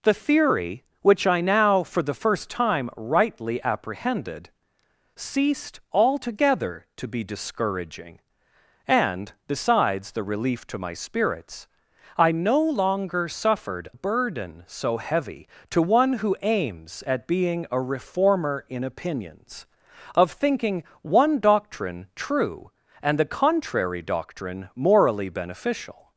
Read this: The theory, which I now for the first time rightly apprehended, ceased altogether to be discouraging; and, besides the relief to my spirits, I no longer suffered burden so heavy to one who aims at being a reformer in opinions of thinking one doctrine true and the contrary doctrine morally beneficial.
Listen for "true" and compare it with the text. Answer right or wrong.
right